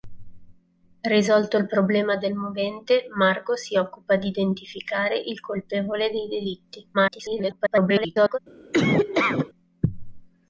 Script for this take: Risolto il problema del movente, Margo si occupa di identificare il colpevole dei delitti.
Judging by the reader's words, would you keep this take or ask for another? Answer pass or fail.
fail